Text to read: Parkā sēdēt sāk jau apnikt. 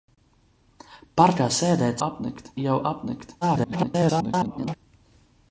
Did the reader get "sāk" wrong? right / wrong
wrong